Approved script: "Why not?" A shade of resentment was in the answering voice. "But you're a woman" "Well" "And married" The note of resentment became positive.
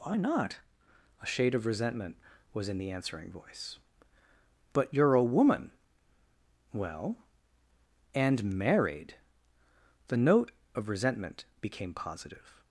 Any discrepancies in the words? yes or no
no